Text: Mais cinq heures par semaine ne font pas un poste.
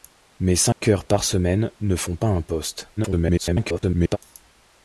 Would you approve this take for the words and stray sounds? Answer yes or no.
no